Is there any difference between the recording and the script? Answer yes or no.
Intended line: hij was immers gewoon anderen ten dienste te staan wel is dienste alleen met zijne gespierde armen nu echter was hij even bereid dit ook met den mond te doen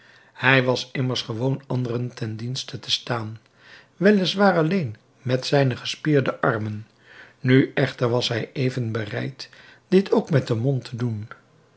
yes